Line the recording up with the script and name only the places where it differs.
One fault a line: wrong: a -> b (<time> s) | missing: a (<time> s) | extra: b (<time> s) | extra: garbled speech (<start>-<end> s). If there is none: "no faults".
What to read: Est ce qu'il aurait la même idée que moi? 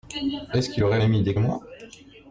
missing: la (1.0 s)
missing: que (1.4 s)